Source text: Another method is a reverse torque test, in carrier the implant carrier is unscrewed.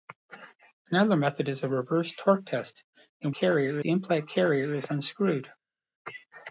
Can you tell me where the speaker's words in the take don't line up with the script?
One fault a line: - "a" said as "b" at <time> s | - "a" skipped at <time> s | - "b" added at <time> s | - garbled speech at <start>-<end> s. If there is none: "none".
none